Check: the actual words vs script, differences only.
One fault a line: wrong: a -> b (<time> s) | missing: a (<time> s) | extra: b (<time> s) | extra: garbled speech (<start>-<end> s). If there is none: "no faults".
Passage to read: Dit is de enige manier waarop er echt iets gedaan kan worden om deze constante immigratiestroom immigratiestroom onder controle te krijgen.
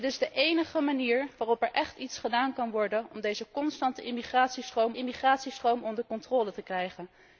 no faults